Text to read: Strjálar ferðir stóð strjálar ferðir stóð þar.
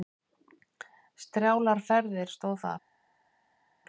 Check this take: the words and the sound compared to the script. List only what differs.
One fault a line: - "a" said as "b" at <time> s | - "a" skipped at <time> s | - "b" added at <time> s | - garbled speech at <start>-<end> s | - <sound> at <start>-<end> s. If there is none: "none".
- "strjálar ferðir stóð" skipped at 2.6 s